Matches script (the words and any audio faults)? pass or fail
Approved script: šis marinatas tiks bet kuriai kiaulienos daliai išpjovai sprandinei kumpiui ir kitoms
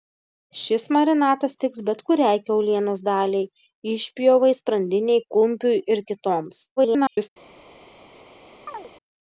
fail